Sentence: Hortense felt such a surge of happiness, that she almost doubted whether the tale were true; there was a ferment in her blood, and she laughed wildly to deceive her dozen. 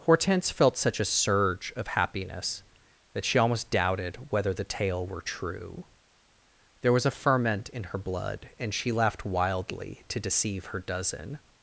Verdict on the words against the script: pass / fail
pass